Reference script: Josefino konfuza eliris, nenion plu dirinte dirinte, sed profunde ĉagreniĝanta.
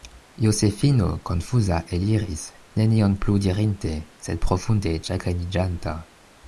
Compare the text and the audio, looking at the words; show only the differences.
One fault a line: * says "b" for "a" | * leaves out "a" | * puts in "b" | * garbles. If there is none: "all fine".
* leaves out "dirinte"